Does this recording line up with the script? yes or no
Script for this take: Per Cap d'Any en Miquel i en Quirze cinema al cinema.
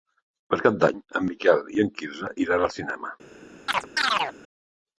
no